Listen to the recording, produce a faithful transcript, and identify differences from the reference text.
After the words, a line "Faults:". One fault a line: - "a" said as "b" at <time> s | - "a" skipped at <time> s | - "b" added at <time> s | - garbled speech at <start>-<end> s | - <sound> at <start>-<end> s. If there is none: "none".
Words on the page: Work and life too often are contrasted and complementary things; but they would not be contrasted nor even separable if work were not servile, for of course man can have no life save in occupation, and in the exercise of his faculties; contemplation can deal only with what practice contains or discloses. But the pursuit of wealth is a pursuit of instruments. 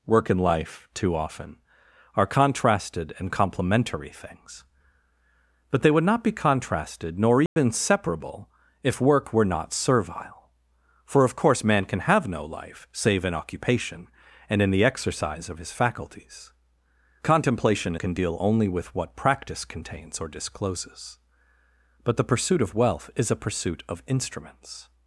Work and life too often are contrasted and complementary things; but they would not be contrasted nor even separable if work were not servile, for of course man can have no life save in occupation, and in the exercise of his faculties; contemplation can deal only with what practice contains or discloses. But the pursuit of wealth is a pursuit of instruments.
Faults:
- dropout at 7.5-7.6 s